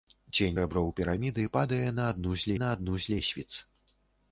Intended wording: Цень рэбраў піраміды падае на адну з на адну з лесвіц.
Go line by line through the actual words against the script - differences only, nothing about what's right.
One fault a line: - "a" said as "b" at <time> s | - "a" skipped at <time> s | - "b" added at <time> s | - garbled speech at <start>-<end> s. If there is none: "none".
none